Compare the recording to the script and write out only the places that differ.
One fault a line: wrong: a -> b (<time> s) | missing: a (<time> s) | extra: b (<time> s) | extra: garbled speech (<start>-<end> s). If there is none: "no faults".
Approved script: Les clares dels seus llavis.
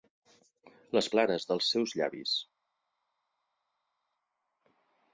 no faults